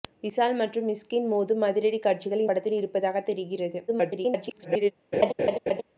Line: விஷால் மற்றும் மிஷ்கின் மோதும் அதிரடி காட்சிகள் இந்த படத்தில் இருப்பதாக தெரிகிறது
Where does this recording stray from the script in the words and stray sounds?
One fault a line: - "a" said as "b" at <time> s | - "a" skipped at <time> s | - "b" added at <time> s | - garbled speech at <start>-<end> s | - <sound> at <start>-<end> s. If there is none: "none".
- "இந்த" skipped at 2.5 s
- garbled speech at 3.9-4.9 s
- laugh at 5.1-5.8 s